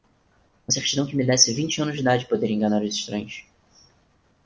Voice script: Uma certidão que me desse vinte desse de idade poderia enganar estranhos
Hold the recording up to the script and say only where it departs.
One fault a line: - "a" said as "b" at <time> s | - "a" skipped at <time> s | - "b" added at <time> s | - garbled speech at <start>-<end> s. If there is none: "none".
- "desse" said as "anos" at 1.8 s
- "os" added at 2.8 s